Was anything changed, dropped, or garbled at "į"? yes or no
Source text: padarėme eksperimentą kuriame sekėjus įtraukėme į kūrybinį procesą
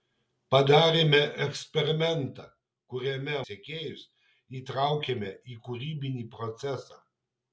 no